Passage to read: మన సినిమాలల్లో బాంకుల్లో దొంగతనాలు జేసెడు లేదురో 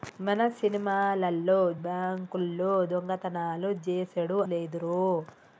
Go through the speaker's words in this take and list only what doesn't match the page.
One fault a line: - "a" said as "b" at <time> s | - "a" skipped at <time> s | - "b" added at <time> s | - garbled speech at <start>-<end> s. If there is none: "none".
none